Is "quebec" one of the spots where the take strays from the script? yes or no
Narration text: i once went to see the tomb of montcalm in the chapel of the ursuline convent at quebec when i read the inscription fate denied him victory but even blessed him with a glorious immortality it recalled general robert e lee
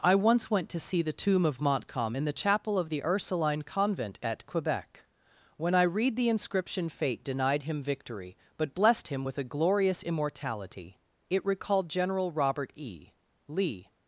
no